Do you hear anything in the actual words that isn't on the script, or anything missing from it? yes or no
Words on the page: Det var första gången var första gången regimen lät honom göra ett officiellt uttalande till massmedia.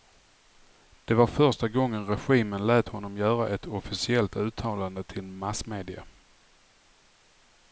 yes